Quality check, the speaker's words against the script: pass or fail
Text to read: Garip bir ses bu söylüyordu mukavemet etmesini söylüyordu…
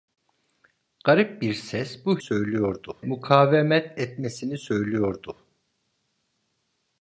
pass